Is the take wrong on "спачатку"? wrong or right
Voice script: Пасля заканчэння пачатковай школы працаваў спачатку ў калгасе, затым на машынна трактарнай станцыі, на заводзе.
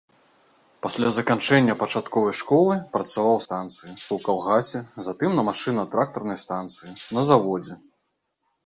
wrong